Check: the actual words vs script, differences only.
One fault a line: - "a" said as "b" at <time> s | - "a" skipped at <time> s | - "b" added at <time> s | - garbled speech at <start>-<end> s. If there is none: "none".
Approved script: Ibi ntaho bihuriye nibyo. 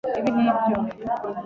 - "ntaho bihuriye" skipped at 0.3 s